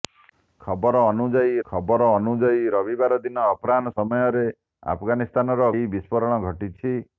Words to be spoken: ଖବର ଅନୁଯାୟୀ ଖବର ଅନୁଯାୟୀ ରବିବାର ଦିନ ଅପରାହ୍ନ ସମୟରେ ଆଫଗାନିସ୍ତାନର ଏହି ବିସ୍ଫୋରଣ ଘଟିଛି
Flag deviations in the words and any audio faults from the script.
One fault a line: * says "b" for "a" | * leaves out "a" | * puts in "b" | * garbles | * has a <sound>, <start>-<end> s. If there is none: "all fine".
all fine